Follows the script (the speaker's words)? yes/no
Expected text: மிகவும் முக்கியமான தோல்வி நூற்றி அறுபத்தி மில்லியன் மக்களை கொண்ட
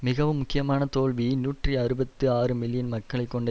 no